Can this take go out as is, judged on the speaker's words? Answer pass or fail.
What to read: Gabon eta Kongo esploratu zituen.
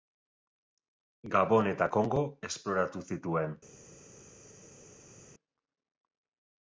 pass